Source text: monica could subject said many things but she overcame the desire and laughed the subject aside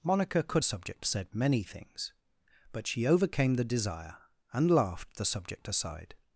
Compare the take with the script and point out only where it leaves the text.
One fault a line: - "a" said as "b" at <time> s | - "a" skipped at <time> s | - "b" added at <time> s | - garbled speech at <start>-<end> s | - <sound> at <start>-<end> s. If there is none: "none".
none